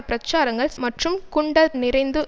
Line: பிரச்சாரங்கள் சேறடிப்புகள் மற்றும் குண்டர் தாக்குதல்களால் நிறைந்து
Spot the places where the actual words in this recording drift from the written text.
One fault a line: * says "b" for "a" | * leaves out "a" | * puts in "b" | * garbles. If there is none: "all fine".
* leaves out "சேறடிப்புகள்"
* leaves out "தாக்குதல்களால்"